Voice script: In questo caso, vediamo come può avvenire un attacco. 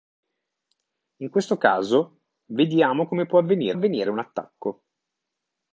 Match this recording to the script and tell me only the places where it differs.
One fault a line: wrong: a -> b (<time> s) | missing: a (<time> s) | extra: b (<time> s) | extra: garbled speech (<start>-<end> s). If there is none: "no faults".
extra: avvenire (3.7 s)